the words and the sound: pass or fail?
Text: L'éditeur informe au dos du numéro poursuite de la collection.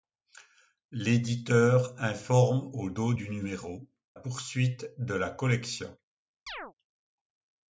fail